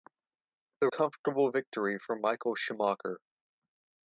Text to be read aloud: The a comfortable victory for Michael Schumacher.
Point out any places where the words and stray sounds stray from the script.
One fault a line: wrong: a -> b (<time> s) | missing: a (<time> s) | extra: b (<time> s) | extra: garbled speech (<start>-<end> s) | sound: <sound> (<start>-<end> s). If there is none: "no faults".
no faults